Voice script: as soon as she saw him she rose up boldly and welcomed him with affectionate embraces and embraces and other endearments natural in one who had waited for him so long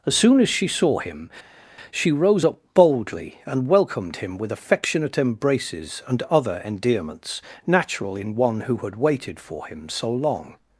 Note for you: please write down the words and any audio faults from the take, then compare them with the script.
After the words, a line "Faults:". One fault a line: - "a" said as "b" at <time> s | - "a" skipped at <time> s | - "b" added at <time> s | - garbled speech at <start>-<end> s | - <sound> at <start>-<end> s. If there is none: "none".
as soon as she saw him she rose up boldly and welcomed him with affectionate embraces and other endearments natural in one who had waited for him so long
Faults:
- "embraces and" skipped at 6.2 s